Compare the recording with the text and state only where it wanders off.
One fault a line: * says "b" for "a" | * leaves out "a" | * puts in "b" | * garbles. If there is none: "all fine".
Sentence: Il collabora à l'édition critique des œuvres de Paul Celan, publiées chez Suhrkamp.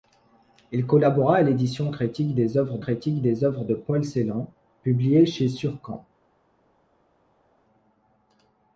* puts in "critique des œuvres"